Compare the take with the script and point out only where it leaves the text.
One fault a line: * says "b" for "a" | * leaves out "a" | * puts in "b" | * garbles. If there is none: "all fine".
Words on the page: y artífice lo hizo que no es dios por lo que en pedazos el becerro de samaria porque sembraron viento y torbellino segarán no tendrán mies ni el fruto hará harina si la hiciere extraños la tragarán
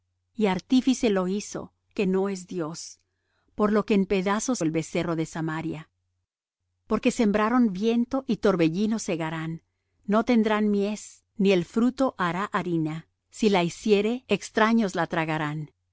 all fine